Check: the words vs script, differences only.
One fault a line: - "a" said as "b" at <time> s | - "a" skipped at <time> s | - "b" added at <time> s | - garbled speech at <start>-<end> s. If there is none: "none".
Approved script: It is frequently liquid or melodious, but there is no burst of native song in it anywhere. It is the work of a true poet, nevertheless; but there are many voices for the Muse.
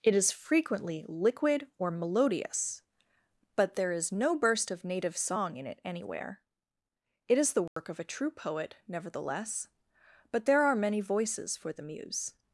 none